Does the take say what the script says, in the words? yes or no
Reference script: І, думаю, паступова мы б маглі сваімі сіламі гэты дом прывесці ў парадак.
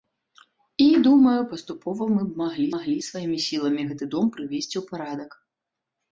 no